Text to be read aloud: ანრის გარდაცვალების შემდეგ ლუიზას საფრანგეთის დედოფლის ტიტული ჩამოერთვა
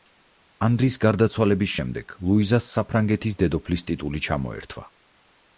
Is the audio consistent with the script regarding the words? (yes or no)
yes